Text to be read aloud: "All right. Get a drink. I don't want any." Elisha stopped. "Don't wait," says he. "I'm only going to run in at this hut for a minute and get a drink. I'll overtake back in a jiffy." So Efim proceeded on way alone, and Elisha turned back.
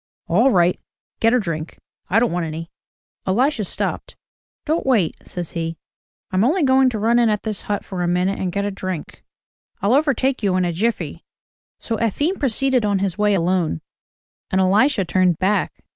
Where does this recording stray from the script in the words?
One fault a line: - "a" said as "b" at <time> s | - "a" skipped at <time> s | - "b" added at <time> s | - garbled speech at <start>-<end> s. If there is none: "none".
- "back" said as "you" at 10.4 s
- "his" added at 13.0 s